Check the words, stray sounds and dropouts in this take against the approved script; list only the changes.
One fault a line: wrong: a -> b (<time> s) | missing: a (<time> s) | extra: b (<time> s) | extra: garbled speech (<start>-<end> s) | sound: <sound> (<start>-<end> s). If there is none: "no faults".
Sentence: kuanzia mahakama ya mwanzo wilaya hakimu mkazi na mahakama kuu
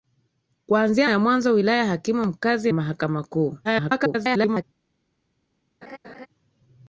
missing: mahakama (1.1 s)
missing: na (2.7 s)
extra: garbled speech (3.6-4.6 s)
sound: laugh (5.8-6.3 s)